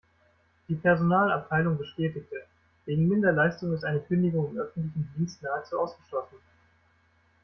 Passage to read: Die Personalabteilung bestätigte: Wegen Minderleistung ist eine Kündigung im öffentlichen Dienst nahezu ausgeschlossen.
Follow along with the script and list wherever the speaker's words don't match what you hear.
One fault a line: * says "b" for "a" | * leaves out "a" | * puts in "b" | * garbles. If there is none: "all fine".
all fine